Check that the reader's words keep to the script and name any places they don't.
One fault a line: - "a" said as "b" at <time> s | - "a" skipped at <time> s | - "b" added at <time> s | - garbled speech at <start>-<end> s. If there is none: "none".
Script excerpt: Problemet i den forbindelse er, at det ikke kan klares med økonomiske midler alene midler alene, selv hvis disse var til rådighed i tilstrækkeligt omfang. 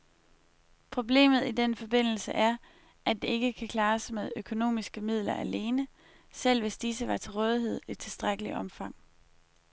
- "midler alene" skipped at 5.9 s